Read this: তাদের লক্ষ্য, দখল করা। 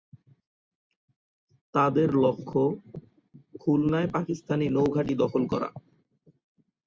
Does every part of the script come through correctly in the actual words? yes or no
no